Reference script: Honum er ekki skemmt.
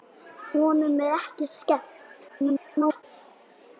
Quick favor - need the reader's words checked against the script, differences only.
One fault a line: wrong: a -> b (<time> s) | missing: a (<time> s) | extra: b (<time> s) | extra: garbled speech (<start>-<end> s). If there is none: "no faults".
extra: garbled speech (2.3-3.0 s)